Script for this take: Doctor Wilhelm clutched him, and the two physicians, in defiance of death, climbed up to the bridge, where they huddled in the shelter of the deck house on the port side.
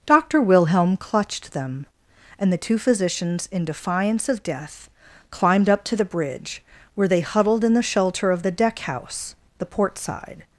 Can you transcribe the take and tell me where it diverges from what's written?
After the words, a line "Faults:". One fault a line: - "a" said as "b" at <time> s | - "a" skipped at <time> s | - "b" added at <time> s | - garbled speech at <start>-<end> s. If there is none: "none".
Doctor Wilhelm clutched them, and the two physicians, in defiance of death, climbed up to the bridge, where they huddled in the shelter of the deck house the port side.
Faults:
- "him" said as "them" at 1.5 s
- "on" skipped at 9.4 s